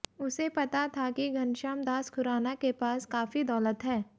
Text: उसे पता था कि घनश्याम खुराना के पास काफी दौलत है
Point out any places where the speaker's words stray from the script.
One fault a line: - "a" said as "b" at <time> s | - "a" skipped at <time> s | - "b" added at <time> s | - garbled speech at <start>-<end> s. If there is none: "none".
- "दास" added at 1.8 s